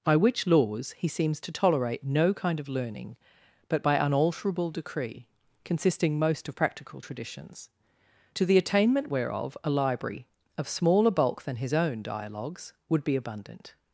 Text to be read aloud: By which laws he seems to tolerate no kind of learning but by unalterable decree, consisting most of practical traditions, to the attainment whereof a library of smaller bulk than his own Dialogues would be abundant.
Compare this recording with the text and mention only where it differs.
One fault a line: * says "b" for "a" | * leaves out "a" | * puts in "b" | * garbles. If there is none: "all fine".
all fine